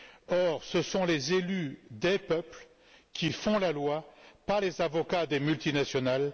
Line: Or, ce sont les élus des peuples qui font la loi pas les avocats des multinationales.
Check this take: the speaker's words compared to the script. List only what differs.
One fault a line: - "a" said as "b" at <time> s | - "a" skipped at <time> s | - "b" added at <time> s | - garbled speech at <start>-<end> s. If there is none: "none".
none